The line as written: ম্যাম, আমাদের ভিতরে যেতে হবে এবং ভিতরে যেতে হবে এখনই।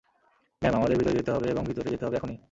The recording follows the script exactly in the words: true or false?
true